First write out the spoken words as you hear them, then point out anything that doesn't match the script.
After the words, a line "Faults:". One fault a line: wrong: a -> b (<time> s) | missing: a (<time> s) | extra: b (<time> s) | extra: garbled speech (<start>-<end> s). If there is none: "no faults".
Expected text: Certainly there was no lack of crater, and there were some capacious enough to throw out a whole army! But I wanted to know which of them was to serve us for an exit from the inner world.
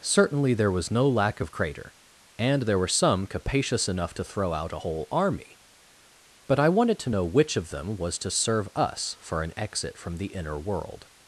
Certainly there was no lack of crater, and there were some capacious enough to throw out a whole army! But I wanted to know which of them was to serve us for an exit from the inner world.
Faults:
no faults